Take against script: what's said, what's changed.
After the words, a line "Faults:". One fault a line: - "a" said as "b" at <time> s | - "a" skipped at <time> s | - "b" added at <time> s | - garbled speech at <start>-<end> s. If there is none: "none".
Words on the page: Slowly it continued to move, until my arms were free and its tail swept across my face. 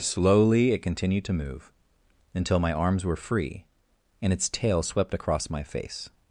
Slowly it continued to move, until my arms were free and its tail swept across my face.
Faults:
none